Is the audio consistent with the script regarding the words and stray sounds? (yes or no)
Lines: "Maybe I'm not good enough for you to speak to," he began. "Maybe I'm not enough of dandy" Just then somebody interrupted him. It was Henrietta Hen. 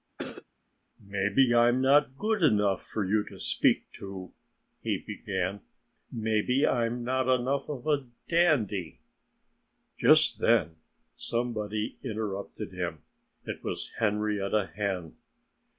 no